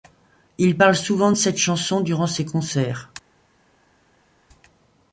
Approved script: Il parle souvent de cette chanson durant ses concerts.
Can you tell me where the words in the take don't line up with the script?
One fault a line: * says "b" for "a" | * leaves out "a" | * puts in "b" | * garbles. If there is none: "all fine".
all fine